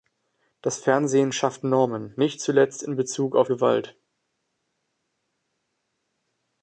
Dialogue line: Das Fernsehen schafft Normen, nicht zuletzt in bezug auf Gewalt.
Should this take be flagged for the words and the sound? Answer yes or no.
no